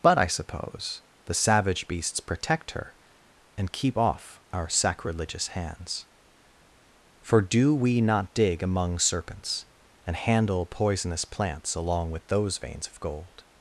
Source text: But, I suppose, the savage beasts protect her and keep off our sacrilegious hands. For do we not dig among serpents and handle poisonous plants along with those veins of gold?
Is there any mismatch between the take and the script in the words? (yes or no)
no